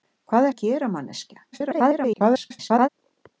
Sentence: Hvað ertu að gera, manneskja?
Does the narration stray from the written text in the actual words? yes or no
yes